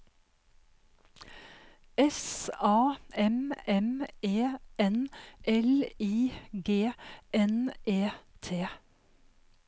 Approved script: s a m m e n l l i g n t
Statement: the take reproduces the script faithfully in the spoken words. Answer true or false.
false